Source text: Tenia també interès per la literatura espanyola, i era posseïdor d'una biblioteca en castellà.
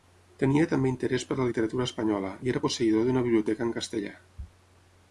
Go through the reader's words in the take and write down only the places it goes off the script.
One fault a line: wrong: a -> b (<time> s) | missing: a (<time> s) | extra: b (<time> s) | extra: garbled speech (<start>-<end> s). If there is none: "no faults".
no faults